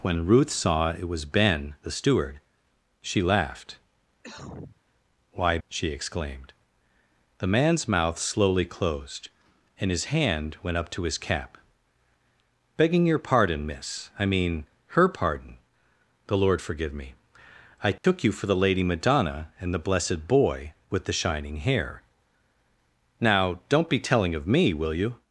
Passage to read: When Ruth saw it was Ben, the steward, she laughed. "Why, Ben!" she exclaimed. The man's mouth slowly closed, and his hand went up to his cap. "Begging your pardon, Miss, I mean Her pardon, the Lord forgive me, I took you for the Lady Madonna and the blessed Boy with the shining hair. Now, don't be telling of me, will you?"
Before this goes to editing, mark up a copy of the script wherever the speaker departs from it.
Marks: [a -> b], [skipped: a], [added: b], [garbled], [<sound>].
When Ruth saw it was Ben, the steward, she laughed. [cough] "Why, [skipped: Ben!"] she exclaimed. The man's mouth slowly closed, and his hand went up to his cap. "Begging your pardon, Miss, I mean Her pardon, the Lord forgive me, I took [dropout] you for the Lady Madonna and the blessed Boy with the shining hair. Now, don't be telling of me, will you?"